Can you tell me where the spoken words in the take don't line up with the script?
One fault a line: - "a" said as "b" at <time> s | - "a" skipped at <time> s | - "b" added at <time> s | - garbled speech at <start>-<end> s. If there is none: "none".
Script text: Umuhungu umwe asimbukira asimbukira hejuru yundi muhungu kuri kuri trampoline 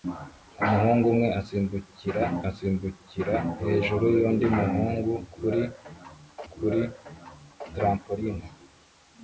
none